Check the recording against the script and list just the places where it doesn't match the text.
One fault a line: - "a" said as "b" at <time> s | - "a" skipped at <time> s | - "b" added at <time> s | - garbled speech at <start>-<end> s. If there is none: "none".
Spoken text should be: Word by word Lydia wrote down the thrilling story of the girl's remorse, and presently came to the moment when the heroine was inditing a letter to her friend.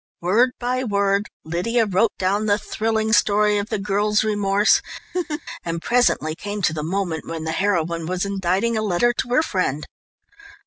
none